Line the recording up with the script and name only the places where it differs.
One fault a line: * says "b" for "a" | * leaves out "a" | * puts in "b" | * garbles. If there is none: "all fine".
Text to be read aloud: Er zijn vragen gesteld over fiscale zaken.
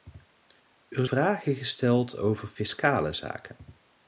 * leaves out "zijn"